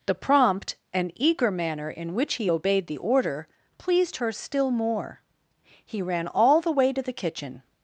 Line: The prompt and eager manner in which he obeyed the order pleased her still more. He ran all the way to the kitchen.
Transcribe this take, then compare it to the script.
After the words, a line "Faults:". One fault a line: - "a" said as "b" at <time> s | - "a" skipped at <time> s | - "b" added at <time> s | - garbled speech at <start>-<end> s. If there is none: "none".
The prompt and eager manner in which he obeyed the order pleased her still more. He ran all the way to the kitchen.
Faults:
none